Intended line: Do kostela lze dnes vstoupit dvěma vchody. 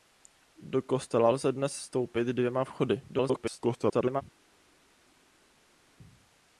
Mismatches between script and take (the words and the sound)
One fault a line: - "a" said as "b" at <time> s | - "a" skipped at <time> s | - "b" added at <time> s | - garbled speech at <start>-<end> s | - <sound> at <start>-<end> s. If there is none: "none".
- garbled speech at 3.1-4.2 s